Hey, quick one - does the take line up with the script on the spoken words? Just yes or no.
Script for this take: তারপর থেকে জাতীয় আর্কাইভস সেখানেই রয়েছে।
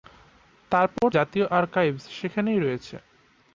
no